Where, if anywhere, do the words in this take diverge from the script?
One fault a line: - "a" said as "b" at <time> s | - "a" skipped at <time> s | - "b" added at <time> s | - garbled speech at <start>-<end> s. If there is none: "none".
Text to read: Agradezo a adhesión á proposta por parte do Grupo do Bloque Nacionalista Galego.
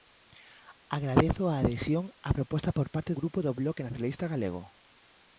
- "do" skipped at 3.1 s